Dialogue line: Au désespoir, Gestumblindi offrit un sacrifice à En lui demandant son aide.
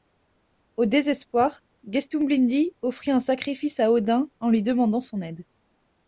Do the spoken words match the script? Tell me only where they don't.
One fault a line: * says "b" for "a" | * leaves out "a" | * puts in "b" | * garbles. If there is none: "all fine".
* puts in "Odin"